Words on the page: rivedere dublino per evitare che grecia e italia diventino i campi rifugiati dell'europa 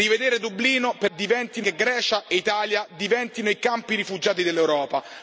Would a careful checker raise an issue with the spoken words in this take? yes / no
yes